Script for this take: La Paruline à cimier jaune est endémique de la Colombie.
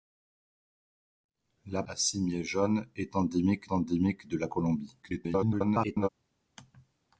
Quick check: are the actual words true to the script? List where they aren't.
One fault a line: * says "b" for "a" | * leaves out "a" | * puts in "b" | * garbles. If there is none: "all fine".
* leaves out "Paruline"
* puts in "endémique"
* garbles